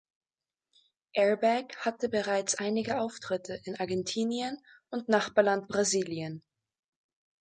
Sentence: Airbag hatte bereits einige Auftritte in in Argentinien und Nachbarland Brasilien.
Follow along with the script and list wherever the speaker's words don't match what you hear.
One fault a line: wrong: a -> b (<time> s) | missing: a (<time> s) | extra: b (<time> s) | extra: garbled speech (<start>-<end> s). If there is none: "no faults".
missing: in (3.7 s)